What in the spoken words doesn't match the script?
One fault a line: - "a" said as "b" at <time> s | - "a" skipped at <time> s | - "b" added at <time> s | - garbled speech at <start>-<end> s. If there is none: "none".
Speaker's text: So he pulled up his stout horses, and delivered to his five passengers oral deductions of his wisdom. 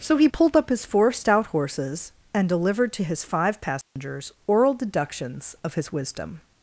- "four" added at 0.8 s